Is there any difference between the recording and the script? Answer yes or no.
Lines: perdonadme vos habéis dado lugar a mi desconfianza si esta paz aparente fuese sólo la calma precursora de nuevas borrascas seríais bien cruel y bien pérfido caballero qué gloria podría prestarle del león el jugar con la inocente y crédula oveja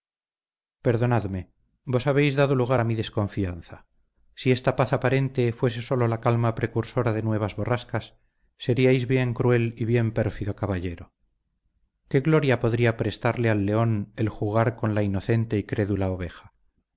yes